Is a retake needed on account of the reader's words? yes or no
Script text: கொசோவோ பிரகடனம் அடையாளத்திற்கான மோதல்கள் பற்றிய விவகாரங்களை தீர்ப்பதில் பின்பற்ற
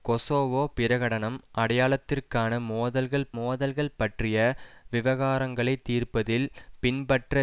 yes